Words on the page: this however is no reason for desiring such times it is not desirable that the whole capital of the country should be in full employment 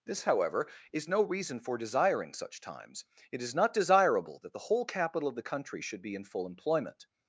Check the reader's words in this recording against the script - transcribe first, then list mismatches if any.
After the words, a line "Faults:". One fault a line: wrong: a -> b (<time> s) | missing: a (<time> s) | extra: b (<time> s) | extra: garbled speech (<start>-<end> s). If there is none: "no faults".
this however is no reason for desiring such times it is not desirable that the whole capital of the country should be in full employment
Faults:
no faults